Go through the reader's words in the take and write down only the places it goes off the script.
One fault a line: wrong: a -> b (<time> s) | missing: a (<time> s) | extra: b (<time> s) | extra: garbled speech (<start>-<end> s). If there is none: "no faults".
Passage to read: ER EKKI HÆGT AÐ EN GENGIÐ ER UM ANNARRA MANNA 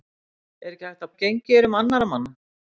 no faults